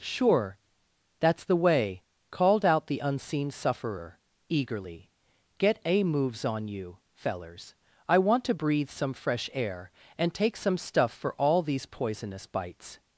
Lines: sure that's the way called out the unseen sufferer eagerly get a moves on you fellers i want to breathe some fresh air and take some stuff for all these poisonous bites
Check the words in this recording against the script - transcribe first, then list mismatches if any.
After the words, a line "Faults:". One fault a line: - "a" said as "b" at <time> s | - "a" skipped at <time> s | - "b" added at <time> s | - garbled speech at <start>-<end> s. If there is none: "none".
sure that's the way called out the unseen sufferer eagerly get a moves on you fellers i want to breathe some fresh air and take some stuff for all these poisonous bites
Faults:
none